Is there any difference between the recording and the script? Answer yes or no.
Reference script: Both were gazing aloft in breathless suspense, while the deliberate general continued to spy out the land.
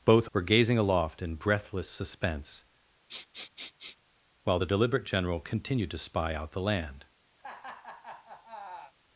no